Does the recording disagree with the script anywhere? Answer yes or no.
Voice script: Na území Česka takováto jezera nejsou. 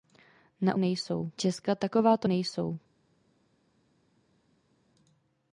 yes